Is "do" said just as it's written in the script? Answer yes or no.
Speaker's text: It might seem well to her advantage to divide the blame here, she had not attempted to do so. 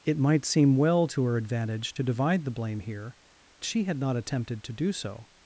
yes